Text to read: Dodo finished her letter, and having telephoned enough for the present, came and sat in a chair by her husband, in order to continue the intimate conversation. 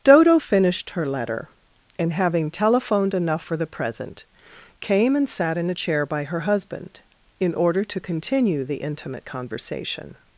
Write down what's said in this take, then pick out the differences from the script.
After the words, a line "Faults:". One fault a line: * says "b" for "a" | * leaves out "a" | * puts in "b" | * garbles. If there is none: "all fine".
Dodo finished her letter, and having telephoned enough for the present, came and sat in a chair by her husband, in order to continue the intimate conversation.
Faults:
all fine